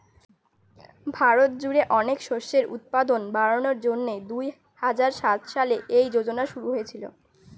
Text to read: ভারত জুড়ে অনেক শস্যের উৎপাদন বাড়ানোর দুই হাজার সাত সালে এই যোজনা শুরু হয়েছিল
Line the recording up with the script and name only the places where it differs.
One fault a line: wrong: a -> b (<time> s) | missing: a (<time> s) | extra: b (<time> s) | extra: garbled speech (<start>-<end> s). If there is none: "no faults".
extra: জন্যে (3.8 s)